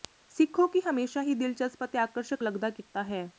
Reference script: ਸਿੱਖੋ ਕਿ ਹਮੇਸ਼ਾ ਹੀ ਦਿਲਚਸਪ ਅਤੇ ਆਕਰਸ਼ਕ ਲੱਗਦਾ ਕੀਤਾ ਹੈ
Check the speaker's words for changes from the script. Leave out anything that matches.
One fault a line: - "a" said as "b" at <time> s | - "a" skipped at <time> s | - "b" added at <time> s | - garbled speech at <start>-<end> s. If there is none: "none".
none